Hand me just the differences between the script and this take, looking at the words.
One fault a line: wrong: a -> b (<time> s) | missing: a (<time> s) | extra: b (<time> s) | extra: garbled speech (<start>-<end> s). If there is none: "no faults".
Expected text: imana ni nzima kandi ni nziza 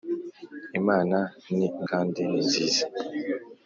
missing: nzima (1.7 s)